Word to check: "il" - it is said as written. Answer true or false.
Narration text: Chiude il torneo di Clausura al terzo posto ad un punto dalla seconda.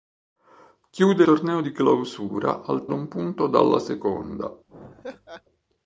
false